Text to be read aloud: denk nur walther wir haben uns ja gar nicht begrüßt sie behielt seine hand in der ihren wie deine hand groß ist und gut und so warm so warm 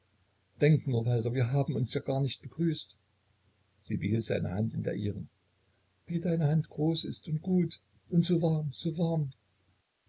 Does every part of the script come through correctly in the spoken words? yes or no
yes